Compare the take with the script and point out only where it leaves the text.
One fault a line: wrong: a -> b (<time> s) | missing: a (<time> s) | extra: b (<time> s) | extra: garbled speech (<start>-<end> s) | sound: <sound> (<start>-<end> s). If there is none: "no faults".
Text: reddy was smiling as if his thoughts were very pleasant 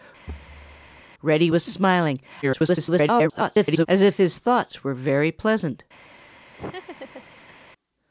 sound: thud (0.3-1.0 s)
extra: garbled speech (2.4-3.9 s)
sound: laugh (6.5-7.7 s)